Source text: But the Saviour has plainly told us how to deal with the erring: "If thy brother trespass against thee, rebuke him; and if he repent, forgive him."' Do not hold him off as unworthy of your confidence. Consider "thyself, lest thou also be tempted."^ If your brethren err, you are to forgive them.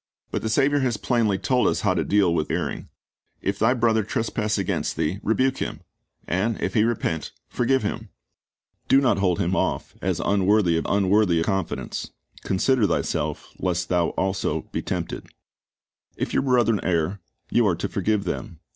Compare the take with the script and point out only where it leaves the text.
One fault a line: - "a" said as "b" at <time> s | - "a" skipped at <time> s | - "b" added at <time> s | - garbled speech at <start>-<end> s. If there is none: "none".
- "the" skipped at 2.5 s
- "your" said as "unworthy" at 10.8 s